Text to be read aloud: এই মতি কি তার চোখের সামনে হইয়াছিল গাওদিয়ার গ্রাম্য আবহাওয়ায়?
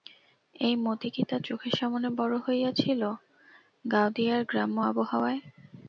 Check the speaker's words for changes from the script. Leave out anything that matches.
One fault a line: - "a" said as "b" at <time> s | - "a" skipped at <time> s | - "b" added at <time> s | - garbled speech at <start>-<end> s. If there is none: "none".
- "বড়" added at 2.2 s